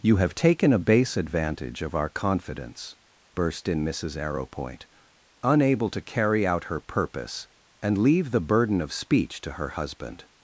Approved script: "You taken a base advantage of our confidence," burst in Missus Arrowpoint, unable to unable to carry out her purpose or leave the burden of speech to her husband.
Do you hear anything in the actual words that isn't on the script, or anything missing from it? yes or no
yes